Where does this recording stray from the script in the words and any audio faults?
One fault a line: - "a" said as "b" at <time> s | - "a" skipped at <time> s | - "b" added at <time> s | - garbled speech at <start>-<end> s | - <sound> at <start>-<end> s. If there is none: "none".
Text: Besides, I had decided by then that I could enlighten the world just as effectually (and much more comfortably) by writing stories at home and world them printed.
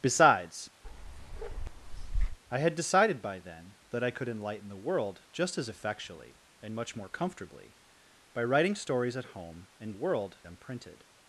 - bark at 0.8-2.4 s